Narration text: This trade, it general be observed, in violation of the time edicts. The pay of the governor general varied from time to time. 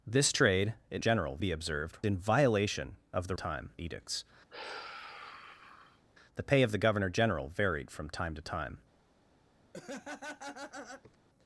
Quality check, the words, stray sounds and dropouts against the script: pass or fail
fail